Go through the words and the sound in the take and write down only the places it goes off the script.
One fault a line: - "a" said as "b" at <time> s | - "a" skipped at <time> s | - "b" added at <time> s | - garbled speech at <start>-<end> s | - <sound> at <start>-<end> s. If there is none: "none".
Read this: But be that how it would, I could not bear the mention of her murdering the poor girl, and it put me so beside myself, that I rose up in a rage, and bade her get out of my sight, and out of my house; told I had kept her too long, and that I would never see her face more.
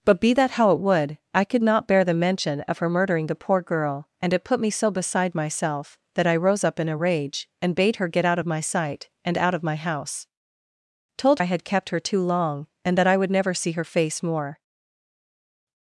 none